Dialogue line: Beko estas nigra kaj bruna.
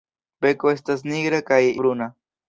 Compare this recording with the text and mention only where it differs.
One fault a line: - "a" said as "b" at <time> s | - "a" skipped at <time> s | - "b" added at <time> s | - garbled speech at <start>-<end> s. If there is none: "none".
none